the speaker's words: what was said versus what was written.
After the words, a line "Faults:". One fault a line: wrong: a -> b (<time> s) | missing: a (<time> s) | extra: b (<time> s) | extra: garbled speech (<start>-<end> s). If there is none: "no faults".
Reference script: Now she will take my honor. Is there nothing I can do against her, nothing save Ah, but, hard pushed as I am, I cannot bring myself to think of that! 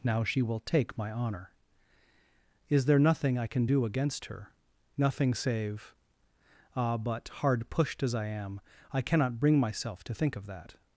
Now she will take my honor. Is there nothing I can do against her, nothing save Ah, but, hard pushed as I am, I cannot bring myself to think of that!
Faults:
no faults